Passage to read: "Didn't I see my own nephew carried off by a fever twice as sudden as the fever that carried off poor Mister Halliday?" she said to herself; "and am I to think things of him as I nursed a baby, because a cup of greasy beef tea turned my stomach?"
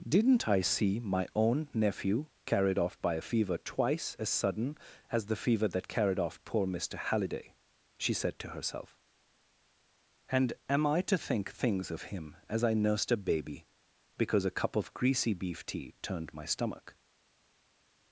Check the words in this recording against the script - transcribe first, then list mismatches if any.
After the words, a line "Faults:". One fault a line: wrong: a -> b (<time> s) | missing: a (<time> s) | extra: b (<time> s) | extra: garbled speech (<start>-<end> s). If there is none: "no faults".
"Didn't I see my own nephew carried off by a fever twice as sudden as the fever that carried off poor Mister Halliday?" she said to herself; "and am I to think things of him as I nursed a baby, because a cup of greasy beef tea turned my stomach?"
Faults:
no faults